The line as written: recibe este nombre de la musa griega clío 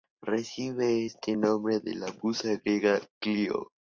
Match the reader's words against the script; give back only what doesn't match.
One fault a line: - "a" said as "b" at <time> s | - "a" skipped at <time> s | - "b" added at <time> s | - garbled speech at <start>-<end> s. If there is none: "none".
none